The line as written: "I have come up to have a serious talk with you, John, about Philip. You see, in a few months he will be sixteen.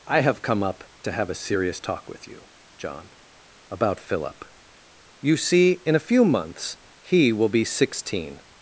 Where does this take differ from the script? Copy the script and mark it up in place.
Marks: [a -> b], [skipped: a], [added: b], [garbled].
"I have come up to have a serious talk with you, John, about Philip. You see, in a few months he will be sixteen.